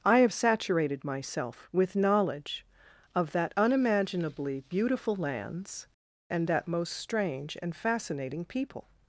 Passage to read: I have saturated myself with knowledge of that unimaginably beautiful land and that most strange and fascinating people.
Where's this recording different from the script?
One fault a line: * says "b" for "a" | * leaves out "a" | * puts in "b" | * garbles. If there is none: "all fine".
* says "lands" for "land"